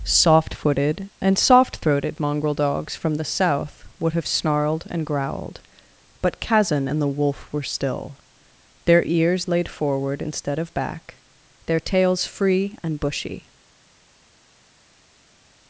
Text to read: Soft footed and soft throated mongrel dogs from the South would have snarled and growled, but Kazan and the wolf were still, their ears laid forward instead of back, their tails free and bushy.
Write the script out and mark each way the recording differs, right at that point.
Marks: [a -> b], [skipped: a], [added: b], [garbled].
Soft footed and soft throated mongrel dogs from the South would have snarled and growled, but Kazan and the wolf were still, their ears laid forward instead of back, their tails free and bushy.